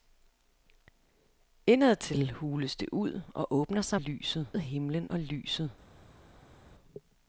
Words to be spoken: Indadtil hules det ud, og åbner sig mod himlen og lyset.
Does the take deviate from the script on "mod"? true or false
true